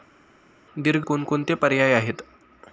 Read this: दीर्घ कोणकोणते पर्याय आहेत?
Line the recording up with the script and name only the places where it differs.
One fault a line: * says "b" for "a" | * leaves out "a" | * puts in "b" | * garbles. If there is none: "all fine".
all fine